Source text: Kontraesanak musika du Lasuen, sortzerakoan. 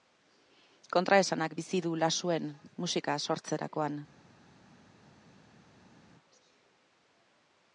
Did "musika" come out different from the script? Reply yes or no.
yes